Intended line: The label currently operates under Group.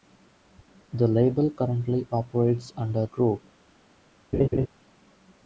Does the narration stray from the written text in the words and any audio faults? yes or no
yes